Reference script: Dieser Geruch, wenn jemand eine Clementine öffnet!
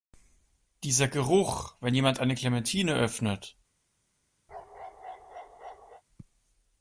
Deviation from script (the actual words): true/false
false